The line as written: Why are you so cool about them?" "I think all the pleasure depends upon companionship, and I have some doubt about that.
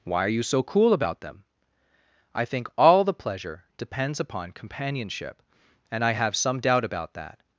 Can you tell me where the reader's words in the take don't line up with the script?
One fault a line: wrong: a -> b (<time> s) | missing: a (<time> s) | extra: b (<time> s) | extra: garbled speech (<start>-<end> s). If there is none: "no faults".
no faults